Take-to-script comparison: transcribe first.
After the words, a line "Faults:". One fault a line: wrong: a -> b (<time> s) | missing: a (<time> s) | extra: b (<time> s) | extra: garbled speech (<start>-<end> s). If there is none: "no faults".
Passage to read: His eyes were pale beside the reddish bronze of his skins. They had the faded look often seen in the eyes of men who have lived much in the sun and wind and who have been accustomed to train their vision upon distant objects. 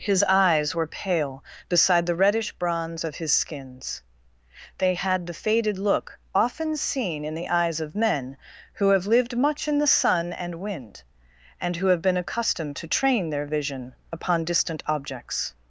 His eyes were pale beside the reddish bronze of his skins. They had the faded look often seen in the eyes of men who have lived much in the sun and wind and who have been accustomed to train their vision upon distant objects.
Faults:
no faults